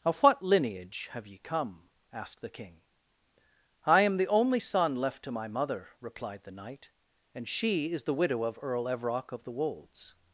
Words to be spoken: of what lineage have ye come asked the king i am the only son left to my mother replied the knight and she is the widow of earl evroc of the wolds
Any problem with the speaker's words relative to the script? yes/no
no